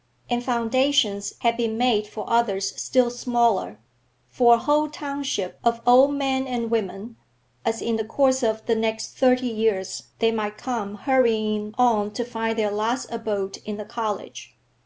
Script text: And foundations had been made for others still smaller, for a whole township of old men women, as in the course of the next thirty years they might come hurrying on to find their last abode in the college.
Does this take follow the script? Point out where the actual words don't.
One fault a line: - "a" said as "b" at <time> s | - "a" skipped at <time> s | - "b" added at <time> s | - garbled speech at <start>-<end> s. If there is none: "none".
- "and" added at 6.5 s